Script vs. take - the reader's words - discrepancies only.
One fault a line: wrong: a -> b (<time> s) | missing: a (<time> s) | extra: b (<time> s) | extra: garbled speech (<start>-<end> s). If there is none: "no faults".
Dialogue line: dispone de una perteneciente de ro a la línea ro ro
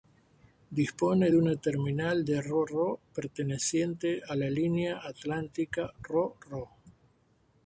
wrong: perteneciente -> terminal (1.6 s)
extra: ro perteneciente (2.6 s)
extra: atlántica (5.0 s)